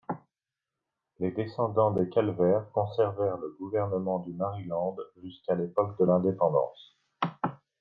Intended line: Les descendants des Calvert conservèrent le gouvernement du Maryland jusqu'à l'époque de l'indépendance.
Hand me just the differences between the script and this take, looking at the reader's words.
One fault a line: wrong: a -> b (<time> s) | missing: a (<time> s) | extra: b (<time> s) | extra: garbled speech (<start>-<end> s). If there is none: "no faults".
no faults